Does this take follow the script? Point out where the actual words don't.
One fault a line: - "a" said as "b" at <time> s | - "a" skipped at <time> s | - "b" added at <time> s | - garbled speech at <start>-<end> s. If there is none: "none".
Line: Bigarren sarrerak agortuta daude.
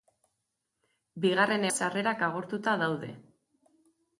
none